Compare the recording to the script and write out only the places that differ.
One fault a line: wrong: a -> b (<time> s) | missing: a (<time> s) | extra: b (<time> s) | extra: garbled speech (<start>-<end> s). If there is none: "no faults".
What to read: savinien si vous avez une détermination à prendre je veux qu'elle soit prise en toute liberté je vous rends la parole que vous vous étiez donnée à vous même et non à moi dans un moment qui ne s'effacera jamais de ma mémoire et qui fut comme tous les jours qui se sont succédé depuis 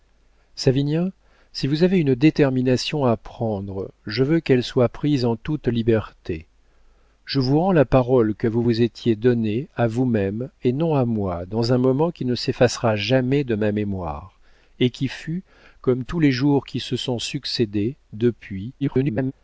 extra: garbled speech (18.8-19.3 s)